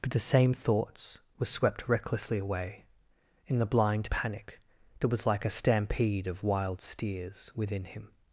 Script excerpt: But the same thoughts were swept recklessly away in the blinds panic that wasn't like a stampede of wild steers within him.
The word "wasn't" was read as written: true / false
false